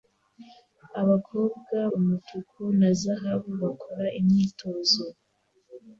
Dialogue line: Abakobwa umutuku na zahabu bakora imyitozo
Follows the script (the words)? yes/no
yes